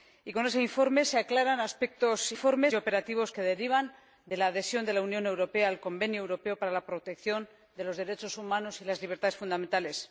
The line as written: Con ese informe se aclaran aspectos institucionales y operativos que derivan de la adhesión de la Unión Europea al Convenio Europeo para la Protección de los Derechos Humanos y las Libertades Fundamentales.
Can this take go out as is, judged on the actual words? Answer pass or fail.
fail